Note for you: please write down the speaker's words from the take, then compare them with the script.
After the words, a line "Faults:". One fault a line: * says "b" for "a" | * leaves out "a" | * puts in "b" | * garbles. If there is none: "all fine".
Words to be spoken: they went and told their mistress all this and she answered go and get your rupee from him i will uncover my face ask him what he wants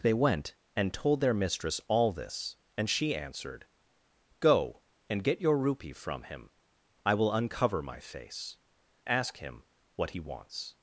they went and told their mistress all this and she answered go and get your rupee from him i will uncover my face ask him what he wants
Faults:
all fine